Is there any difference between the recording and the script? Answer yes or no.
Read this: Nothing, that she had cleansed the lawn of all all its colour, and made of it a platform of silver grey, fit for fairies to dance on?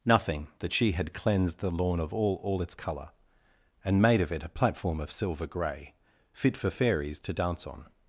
no